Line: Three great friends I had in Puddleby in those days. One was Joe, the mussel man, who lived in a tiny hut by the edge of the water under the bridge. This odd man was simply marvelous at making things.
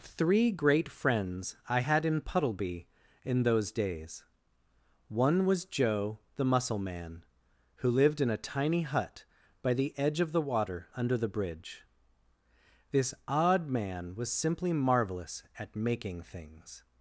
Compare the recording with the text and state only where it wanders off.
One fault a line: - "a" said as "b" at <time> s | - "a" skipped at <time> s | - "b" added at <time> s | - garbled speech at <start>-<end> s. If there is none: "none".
none